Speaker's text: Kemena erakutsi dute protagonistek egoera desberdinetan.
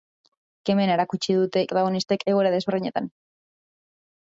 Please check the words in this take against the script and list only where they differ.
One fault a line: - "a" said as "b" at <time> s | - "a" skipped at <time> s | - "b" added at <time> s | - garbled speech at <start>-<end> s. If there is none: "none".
none